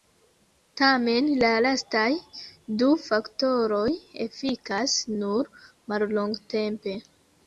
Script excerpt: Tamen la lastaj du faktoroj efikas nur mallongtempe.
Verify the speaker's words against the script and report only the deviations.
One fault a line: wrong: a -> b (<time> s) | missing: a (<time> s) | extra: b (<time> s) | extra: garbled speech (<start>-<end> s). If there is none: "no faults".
no faults